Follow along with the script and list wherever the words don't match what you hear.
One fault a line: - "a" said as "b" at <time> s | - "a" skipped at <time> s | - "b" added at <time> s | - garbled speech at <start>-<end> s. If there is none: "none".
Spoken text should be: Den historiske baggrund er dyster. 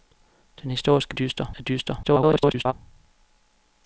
- "baggrund" said as "dyster" at 1.1 s
- garbled speech at 2.0-2.7 s